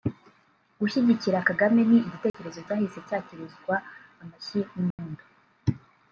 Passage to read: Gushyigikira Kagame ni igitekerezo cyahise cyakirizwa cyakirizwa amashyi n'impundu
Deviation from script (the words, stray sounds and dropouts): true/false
true